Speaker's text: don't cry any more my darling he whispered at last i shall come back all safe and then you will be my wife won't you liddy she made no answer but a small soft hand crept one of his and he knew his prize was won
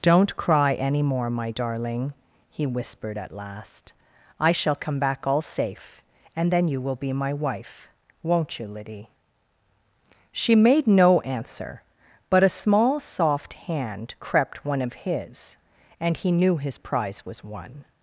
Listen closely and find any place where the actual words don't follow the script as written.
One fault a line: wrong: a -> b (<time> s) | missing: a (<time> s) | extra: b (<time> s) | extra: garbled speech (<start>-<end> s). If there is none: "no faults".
no faults